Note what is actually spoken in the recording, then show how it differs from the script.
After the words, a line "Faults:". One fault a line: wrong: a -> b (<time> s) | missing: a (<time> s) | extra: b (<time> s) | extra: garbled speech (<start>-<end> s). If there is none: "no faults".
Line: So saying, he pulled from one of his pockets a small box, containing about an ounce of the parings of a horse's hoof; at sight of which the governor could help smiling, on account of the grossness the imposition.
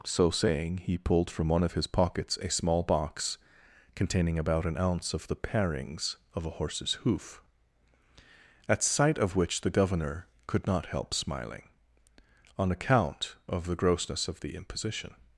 So saying, he pulled from one of his pockets a small box, containing about an ounce of the parings of a horse's hoof; at sight of which the governor could not help smiling, on account of the grossness of the imposition.
Faults:
extra: not (10.7 s)
extra: of (14.3 s)